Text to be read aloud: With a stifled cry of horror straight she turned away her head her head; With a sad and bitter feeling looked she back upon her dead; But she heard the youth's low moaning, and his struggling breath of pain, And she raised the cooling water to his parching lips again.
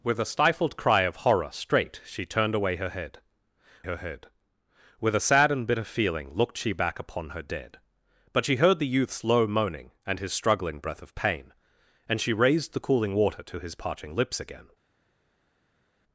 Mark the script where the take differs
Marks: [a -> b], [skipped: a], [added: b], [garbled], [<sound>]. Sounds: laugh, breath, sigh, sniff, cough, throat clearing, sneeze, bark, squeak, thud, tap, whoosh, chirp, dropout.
With a stifled cry of horror straight she turned away her head her head; With a sad and bitter feeling looked she back upon her dead; But she heard the youth's low moaning, and his struggling breath of pain, And she raised the cooling water to his parching lips again.